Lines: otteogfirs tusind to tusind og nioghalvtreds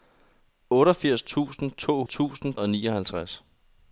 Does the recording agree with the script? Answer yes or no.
yes